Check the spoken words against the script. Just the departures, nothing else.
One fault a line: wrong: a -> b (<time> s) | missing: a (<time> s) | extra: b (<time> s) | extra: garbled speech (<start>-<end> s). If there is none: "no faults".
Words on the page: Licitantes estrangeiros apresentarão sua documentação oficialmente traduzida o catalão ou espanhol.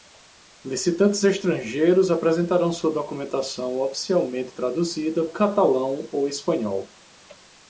no faults